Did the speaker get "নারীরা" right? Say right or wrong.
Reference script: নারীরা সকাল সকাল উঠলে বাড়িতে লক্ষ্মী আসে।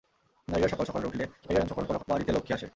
right